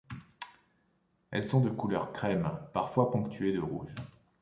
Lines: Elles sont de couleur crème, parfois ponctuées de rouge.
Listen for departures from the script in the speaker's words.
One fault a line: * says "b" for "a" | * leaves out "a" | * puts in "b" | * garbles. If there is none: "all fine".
all fine